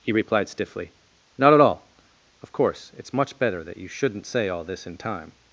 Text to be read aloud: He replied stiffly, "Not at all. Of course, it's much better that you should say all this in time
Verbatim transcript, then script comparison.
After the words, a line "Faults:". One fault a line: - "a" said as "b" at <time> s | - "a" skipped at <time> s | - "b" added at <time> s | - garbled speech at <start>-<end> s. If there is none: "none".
He replied stiffly, "Not at all. Of course, it's much better that you shouldn't say all this in time
Faults:
- "should" said as "shouldn't" at 3.9 s